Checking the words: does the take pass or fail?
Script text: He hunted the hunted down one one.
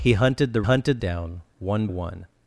pass